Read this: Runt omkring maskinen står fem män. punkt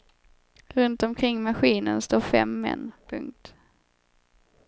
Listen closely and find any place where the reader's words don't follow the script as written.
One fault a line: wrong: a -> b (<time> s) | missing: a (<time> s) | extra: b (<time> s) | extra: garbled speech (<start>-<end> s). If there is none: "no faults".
no faults